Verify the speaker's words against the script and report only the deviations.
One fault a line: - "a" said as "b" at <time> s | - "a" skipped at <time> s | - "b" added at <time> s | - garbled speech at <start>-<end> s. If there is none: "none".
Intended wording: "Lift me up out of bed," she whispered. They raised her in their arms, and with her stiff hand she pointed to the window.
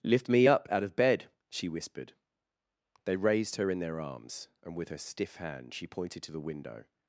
none